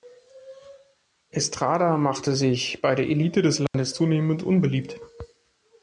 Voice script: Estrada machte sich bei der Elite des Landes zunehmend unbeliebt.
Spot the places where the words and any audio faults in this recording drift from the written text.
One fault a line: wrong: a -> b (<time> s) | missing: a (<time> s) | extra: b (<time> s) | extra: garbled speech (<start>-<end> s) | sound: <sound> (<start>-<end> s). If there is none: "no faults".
sound: dropout (3.7-3.7 s)